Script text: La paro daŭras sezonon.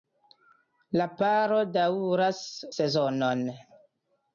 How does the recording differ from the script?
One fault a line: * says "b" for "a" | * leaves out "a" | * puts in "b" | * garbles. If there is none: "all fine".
all fine